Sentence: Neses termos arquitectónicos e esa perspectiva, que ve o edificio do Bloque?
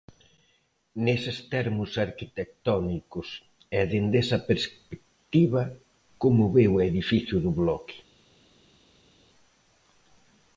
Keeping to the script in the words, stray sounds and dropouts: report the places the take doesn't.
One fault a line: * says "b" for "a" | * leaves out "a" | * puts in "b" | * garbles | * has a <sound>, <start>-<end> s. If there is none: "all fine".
* puts in "dende"
* says "como" for "que"